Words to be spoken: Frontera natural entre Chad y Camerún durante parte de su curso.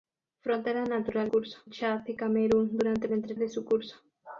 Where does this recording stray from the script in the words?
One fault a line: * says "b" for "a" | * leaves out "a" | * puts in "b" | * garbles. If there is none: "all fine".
* says "curso" for "entre"
* says "entre" for "parte"